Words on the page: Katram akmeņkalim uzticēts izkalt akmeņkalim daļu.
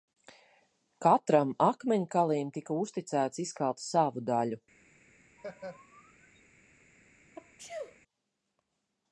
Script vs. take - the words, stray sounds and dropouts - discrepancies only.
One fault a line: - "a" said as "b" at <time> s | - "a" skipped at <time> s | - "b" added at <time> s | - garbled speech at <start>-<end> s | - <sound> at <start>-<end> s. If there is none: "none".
- "tika" added at 2.6 s
- "akmeņkalim" said as "savu" at 3.9 s
- laugh at 5.4-6.4 s
- sneeze at 7.3-8.0 s